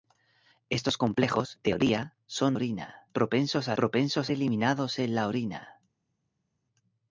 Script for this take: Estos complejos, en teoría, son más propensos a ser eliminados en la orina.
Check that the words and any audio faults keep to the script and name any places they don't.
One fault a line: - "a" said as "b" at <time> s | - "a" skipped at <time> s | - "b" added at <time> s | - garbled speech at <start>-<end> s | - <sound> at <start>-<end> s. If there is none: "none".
- "en" skipped at 1.6 s
- "más" said as "orina" at 2.5 s
- "ser" said as "propensos" at 3.7 s